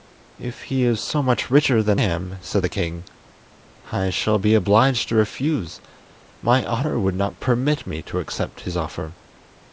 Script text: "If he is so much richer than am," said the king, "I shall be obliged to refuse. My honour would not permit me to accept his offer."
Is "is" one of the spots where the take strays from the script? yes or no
no